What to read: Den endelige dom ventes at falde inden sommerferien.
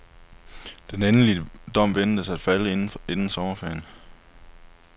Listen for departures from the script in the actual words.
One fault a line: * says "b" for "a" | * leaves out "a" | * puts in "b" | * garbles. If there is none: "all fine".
all fine